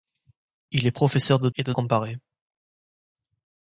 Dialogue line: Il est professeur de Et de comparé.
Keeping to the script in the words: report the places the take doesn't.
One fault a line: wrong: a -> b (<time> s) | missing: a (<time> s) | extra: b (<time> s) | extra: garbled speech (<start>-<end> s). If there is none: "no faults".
no faults